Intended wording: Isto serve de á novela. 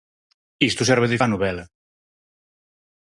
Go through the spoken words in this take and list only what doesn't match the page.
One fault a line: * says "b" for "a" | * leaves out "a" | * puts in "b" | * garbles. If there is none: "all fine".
all fine